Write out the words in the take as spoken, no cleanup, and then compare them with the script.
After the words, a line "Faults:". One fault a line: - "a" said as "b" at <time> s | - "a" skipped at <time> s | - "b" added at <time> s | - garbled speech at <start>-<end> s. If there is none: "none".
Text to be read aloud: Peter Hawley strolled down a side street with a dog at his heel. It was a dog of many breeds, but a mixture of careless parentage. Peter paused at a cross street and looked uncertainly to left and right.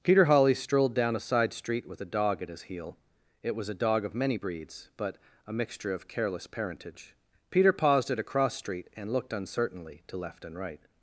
Peter Hawley strolled down a side street with a dog at his heel. It was a dog of many breeds, but a mixture of careless parentage. Peter paused at a cross street and looked uncertainly to left and right.
Faults:
none